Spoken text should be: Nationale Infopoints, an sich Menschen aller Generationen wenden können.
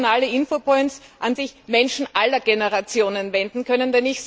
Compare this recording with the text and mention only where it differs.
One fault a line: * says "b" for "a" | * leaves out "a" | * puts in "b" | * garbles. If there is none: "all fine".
all fine